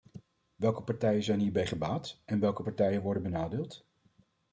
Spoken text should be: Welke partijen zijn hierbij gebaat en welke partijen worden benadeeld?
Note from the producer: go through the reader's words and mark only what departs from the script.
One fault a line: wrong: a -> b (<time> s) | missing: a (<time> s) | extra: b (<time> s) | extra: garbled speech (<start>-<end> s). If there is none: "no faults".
no faults